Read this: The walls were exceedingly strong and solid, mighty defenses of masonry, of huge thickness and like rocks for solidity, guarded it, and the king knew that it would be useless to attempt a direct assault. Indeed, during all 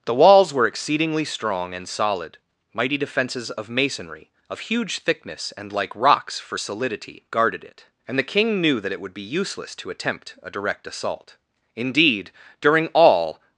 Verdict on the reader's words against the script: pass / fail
pass